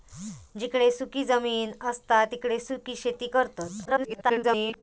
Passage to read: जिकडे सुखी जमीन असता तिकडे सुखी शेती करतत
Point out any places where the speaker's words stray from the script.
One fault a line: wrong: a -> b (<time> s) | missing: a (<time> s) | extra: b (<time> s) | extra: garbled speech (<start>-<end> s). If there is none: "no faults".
extra: garbled speech (3.9-4.8 s)